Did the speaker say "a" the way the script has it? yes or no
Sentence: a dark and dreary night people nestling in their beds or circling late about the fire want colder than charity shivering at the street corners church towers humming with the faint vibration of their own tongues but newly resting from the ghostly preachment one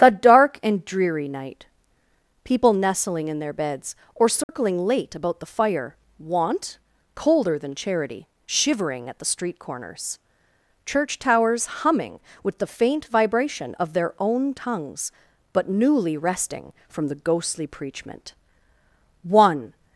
no